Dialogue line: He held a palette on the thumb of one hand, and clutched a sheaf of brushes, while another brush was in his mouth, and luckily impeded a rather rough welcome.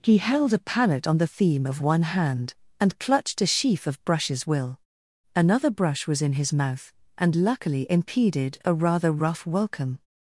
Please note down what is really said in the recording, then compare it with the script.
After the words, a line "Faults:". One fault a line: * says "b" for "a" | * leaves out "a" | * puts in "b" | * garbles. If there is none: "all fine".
He held a palette on the theme of one hand, and clutched a sheaf of brushes, will another brush was in his mouth, and luckily impeded a rather rough welcome.
Faults:
* says "theme" for "thumb"
* says "will" for "while"